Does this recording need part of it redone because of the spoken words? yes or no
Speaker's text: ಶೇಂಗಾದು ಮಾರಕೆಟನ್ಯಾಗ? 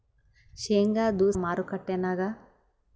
no